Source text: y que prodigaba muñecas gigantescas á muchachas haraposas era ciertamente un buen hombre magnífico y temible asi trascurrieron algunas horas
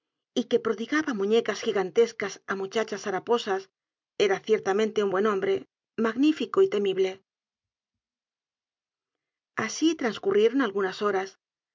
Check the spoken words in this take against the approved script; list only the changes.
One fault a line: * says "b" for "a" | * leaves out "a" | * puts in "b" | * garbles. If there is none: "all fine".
all fine